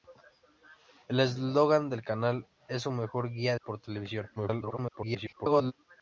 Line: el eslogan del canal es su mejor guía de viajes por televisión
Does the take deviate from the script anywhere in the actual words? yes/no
yes